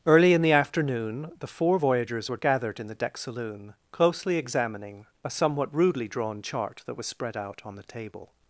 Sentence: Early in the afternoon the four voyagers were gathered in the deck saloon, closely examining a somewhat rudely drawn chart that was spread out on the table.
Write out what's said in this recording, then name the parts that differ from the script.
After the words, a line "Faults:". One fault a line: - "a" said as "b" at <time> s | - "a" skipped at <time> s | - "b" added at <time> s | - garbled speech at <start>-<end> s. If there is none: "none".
Early in the afternoon the four voyagers were gathered in the deck saloon, closely examining a somewhat rudely drawn chart that was spread out on the table.
Faults:
none